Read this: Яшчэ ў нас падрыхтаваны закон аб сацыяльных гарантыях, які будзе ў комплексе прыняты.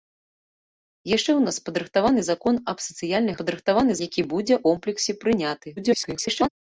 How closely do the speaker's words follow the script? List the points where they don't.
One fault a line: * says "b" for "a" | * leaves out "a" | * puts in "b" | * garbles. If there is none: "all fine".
* says "падрыхтаваны" for "гарантыях"
* leaves out "ў"
* garbles